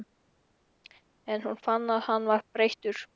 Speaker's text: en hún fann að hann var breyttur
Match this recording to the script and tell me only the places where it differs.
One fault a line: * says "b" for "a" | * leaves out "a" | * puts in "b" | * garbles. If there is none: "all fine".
all fine